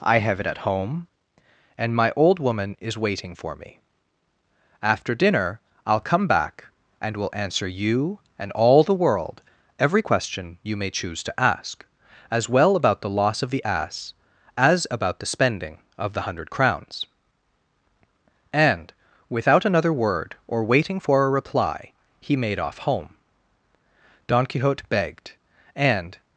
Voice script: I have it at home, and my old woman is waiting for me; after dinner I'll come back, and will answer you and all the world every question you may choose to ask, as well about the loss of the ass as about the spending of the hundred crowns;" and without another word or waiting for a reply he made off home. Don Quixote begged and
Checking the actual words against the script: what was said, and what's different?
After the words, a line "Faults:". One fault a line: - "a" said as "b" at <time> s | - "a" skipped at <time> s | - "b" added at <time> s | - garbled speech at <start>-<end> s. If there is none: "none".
I have it at home, and my old woman is waiting for me; after dinner I'll come back, and will answer you and all the world every question you may choose to ask, as well about the loss of the ass as about the spending of the hundred crowns;" and without another word or waiting for a reply he made off home. Don Quixote begged and
Faults:
none